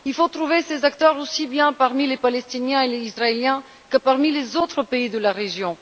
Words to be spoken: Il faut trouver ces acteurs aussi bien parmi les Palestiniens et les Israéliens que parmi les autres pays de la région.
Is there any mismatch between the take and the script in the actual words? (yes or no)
no